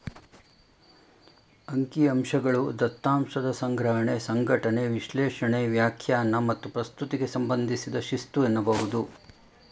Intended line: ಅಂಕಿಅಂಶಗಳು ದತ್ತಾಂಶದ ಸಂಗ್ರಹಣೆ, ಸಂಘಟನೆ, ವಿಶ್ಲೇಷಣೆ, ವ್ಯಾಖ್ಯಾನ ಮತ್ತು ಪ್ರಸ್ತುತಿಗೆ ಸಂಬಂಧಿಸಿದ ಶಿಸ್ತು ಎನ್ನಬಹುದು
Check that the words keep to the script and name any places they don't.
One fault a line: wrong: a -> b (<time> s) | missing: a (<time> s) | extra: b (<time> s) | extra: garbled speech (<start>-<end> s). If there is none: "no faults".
no faults